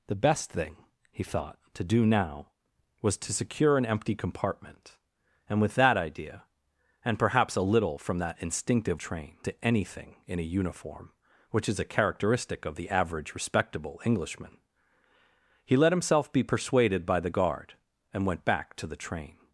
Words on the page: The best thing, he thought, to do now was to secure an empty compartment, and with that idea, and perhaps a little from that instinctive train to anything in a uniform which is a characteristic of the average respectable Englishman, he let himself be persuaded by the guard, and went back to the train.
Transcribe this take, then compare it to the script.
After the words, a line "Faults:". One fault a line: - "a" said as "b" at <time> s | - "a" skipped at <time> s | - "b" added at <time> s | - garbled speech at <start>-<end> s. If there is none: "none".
The best thing, he thought, to do now was to secure an empty compartment, and with that idea, and perhaps a little from that instinctive train to anything in a uniform which is a characteristic of the average respectable Englishman, he let himself be persuaded by the guard, and went back to the train.
Faults:
none